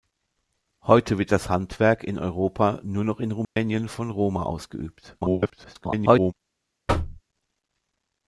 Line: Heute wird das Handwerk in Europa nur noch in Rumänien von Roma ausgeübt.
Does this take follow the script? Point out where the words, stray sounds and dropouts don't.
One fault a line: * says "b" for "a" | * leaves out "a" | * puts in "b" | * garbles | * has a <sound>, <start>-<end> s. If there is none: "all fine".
* has a dropout, 3.4-3.6 s
* garbles
* has a thud, 6.9-7.2 s